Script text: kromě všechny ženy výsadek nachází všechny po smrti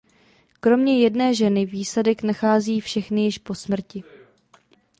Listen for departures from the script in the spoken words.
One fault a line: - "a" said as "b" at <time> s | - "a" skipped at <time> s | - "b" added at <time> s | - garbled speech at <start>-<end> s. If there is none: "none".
- "všechny" said as "jedné" at 1.0 s
- "již" added at 3.2 s